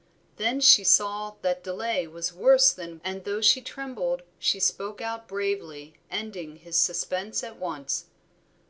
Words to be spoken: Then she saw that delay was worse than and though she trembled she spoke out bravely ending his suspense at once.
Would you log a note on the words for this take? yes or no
no